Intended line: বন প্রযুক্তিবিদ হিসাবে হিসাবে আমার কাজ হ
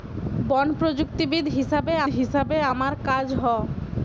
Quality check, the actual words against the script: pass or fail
pass